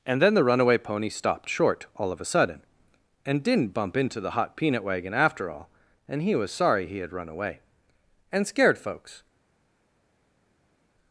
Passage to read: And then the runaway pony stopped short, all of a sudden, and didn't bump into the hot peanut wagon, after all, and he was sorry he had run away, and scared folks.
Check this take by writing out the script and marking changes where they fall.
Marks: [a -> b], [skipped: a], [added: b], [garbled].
And then the runaway pony stopped short, all of a sudden, and didn't bump into the hot peanut wagon, after all, and he was sorry he had run away, and scared folks.